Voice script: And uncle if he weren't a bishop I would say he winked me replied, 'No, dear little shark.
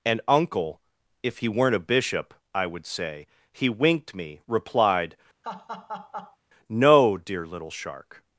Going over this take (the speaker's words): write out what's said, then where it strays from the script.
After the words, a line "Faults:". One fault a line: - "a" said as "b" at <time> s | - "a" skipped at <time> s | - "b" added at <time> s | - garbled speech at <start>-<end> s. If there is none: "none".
And uncle if he weren't a bishop I would say he winked me replied, 'No, dear little shark.
Faults:
none